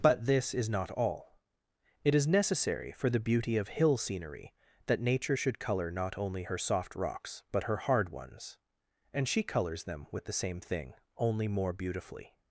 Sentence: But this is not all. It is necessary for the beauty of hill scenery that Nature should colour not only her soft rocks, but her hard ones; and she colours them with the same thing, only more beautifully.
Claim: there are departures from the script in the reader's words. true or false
false